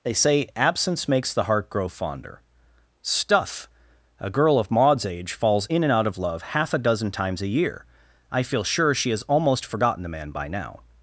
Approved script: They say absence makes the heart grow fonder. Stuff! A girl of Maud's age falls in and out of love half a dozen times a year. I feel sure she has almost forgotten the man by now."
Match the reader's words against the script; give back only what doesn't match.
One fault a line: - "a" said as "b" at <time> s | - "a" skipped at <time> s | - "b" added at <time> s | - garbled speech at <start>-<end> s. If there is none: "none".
none